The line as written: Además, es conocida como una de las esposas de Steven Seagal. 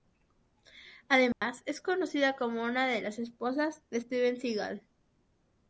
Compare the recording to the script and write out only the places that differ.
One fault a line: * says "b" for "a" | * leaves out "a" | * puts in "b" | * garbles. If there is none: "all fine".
all fine